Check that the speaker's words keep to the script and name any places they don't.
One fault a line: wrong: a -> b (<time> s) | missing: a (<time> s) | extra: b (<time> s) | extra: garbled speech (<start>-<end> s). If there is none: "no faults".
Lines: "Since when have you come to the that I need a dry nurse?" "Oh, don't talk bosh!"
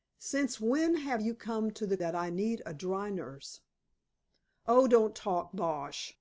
no faults